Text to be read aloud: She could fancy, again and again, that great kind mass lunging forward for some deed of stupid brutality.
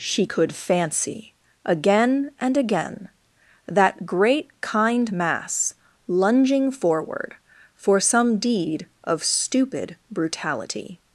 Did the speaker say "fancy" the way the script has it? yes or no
yes